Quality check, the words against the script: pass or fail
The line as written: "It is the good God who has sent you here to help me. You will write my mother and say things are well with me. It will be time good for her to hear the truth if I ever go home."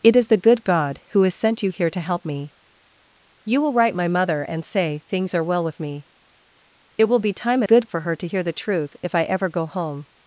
pass